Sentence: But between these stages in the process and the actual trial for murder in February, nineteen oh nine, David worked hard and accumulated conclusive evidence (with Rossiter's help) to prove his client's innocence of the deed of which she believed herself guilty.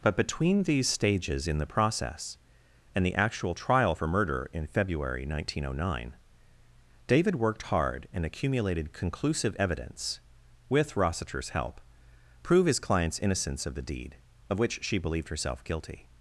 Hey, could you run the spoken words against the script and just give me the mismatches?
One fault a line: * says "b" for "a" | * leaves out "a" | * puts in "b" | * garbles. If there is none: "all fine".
* leaves out "to"